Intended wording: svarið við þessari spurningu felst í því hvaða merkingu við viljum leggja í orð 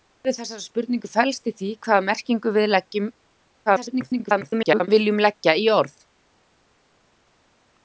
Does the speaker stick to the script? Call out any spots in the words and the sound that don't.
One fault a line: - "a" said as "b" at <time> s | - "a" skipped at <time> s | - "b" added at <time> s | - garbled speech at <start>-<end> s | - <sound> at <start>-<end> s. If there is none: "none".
- garbled speech at 3.7-4.9 s